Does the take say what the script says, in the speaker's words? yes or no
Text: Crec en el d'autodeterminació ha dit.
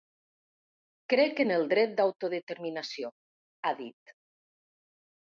no